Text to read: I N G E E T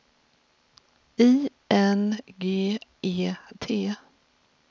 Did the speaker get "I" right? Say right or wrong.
right